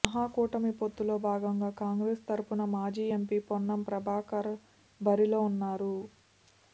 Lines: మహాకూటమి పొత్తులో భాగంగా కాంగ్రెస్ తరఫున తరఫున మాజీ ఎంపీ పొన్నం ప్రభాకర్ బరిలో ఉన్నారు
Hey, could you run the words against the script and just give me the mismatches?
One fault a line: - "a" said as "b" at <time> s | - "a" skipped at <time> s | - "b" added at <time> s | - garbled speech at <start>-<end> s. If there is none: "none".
- "తరఫున" skipped at 2.6 s